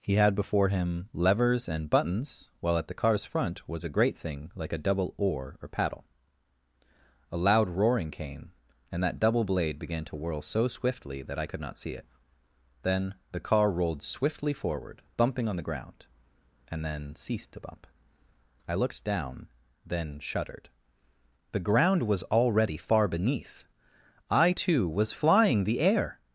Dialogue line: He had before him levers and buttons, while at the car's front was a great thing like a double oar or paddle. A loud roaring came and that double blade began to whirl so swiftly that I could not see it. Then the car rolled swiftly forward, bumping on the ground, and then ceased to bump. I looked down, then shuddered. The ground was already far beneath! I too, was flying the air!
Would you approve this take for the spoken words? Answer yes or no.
yes